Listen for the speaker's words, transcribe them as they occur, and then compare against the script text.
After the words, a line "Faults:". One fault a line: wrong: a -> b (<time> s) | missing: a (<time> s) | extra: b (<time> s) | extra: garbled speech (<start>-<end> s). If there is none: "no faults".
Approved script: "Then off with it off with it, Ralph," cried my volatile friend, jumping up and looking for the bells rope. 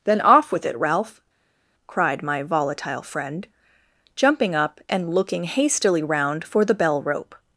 "Then off with it, Ralph," cried my volatile friend, jumping up and looking hastily round for the bell rope.
Faults:
missing: off with it (0.8 s)
extra: hastily round (5.4 s)
wrong: bells -> bell (6.7 s)